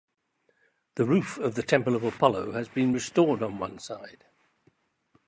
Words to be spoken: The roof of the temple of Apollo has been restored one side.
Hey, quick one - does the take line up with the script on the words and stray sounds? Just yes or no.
no